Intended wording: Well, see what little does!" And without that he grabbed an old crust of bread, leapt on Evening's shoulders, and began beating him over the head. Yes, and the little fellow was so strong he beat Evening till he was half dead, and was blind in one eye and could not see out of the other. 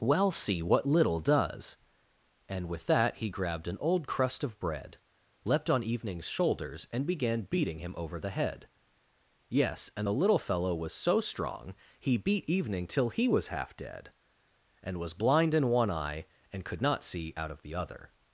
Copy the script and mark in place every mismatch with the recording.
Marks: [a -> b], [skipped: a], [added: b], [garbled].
Well, see what little does!" And [without -> with] that he grabbed an old crust of bread, leapt on Evening's shoulders, and began beating him over the head. Yes, and the little fellow was so strong he beat Evening till he was half dead, and was blind in one eye and could not see out of the other.